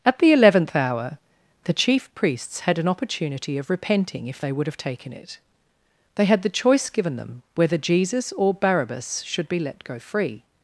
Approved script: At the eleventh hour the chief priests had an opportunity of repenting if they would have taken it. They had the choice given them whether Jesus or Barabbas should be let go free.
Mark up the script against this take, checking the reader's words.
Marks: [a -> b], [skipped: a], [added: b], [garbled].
At the eleventh hour the chief priests had an opportunity of repenting if they would have taken it. They had the choice given them whether Jesus or Barabbas should be let go free.